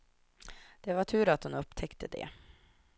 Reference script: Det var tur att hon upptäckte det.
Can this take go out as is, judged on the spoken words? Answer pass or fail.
pass